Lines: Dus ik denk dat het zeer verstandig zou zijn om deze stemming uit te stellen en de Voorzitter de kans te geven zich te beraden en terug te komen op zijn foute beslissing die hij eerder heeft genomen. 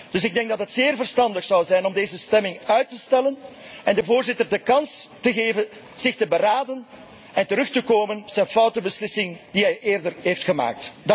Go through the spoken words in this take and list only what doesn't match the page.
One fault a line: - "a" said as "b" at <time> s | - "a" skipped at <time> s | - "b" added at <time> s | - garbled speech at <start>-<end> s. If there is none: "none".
- "op" skipped at 8.2 s